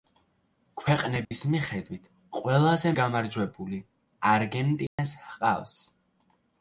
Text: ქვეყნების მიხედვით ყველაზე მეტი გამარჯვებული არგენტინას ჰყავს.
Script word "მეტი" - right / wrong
wrong